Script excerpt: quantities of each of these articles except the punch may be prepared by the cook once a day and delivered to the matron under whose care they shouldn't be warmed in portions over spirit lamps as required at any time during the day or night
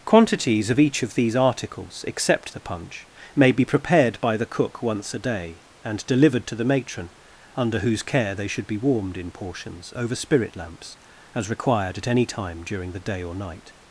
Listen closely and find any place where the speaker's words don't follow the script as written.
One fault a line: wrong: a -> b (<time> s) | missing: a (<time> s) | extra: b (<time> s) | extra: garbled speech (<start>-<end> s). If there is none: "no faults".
wrong: shouldn't -> should (8.5 s)